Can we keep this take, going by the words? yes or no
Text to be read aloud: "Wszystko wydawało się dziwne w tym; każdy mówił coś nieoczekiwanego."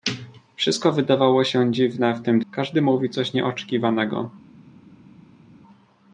yes